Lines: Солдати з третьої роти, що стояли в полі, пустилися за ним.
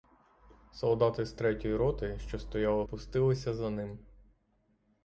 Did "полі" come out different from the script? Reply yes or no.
yes